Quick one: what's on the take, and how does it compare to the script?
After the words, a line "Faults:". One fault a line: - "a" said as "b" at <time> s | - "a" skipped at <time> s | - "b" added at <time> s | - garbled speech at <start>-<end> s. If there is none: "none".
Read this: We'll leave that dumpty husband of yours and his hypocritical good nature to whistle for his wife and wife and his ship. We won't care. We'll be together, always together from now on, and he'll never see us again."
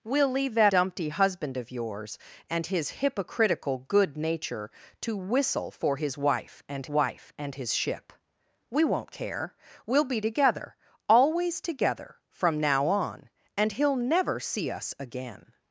We'll leave that dumpty husband of yours and his hypocritical good nature to whistle for his wife and wife and his ship. We won't care. We'll be together, always together from now on, and he'll never see us again."
Faults:
none